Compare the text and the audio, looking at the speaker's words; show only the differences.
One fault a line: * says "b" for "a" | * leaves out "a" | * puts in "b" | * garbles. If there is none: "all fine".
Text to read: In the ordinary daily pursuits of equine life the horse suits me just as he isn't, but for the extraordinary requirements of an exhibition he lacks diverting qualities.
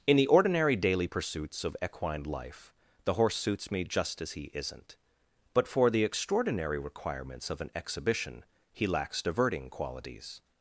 all fine